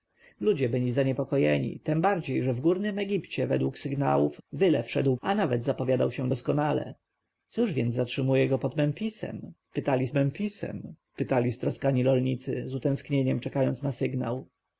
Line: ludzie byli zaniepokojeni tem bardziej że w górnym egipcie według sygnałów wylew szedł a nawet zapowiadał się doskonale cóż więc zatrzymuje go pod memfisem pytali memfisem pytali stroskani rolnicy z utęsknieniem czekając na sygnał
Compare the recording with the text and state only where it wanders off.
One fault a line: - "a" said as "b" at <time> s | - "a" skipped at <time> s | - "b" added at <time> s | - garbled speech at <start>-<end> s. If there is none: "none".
none